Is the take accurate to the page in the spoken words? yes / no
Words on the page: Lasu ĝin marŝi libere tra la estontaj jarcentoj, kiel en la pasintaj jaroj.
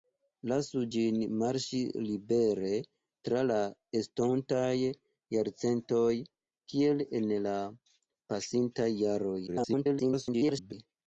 no